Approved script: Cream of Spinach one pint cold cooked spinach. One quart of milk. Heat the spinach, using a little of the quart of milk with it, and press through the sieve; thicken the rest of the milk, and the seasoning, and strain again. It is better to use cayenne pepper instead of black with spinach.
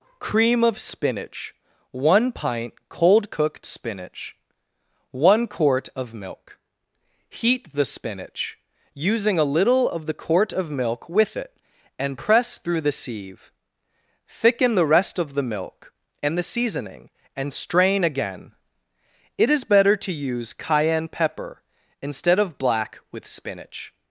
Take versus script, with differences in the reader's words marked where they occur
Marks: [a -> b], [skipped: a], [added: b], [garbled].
Cream of Spinach one pint cold cooked spinach. One quart of milk. Heat the spinach, using a little of the quart of milk with it, and press through the sieve; thicken the rest of the milk, and the seasoning, and strain again. It is better to use cayenne pepper instead of black with spinach.